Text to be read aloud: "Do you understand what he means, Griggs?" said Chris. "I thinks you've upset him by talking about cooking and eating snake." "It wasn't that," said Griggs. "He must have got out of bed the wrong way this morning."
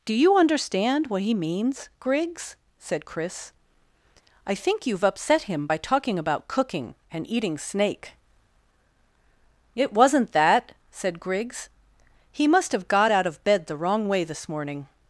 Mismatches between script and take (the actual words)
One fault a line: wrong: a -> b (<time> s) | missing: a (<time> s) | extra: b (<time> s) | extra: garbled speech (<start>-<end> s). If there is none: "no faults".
wrong: thinks -> think (4.5 s)